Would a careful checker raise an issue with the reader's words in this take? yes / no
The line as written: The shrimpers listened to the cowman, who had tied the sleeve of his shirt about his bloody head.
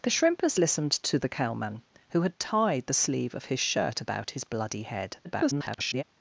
yes